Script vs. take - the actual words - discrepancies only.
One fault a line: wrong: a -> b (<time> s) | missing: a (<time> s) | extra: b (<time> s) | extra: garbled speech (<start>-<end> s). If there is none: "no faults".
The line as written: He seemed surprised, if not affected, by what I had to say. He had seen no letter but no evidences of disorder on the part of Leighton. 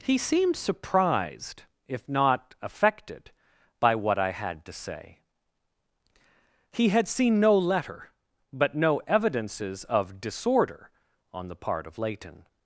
no faults